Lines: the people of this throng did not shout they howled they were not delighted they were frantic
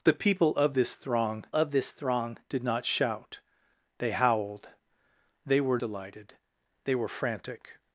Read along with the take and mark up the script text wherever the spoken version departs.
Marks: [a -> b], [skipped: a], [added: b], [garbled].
the people of this throng [added: of this throng] did not shout they howled they were [skipped: not] delighted they were frantic